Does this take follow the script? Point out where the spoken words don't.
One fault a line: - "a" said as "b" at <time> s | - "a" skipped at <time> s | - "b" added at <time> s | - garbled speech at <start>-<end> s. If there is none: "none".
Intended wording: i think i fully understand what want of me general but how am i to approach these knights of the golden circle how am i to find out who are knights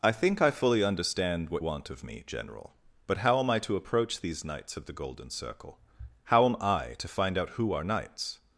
none